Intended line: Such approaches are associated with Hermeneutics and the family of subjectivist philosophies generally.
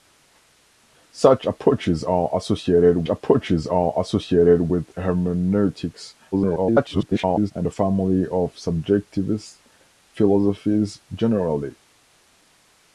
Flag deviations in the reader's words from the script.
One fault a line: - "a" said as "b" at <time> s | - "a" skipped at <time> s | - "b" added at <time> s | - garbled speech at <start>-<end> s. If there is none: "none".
- "approaches are associated" added at 3.1 s
- garbled speech at 6.3-7.5 s